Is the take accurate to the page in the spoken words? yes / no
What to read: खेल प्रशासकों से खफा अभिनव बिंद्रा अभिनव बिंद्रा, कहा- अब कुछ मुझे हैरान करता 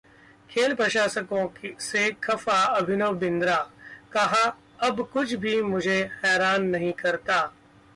no